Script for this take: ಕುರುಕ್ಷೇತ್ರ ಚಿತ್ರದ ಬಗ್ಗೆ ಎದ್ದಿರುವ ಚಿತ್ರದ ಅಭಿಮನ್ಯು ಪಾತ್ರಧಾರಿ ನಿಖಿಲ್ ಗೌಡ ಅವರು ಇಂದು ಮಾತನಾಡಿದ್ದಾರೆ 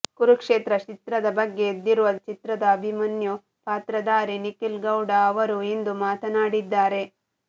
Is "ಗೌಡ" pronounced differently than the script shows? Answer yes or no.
no